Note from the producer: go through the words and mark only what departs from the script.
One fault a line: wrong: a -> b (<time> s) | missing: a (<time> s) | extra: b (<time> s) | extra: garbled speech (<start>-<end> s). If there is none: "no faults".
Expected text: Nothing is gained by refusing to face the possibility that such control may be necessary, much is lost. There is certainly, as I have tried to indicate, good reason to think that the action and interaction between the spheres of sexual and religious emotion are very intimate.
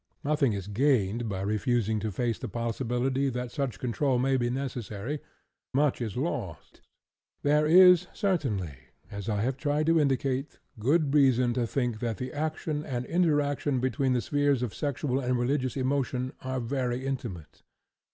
no faults